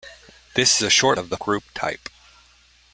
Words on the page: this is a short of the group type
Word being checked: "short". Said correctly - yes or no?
yes